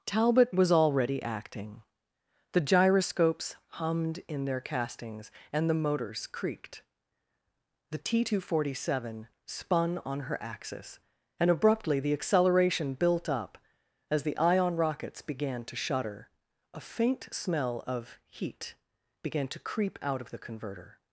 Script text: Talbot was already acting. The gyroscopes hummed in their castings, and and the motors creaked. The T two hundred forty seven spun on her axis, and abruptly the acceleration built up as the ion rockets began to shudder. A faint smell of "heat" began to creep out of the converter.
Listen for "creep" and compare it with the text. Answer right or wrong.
right